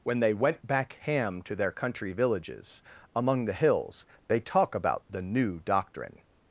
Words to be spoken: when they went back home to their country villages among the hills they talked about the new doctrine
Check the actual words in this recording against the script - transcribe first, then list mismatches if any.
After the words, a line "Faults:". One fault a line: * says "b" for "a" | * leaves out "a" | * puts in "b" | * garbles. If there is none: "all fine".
when they went back ham to their country villages among the hills they talk about the new doctrine
Faults:
* says "ham" for "home"
* says "talk" for "talked"